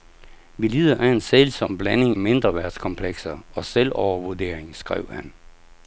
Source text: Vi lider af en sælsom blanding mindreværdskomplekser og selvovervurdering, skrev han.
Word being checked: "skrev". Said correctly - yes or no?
yes